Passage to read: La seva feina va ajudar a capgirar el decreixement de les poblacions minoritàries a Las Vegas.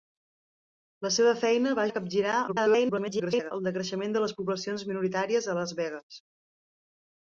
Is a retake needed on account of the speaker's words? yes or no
yes